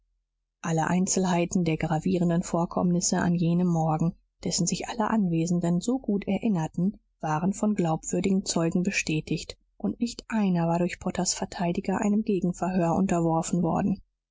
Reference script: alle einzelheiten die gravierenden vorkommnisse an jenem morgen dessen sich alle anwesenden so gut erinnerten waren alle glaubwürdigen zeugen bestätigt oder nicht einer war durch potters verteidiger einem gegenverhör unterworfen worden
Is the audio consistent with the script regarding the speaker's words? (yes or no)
no